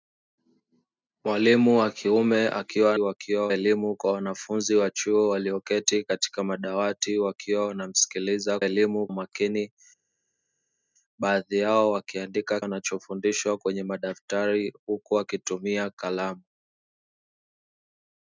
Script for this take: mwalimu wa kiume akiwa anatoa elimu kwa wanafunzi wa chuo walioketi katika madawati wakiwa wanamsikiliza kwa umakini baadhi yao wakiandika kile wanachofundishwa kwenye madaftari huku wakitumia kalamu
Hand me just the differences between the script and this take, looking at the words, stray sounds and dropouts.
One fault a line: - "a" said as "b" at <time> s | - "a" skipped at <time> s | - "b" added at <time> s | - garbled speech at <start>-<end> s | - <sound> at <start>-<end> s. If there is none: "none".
- "anatoa" said as "wakiwa" at 3.0 s
- "kwa" said as "elimu" at 8.6 s
- "kile" skipped at 12.6 s